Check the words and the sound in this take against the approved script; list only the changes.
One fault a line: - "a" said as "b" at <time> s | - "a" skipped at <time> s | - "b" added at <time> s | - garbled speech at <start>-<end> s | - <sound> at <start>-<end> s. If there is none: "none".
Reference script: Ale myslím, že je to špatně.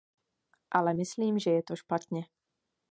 none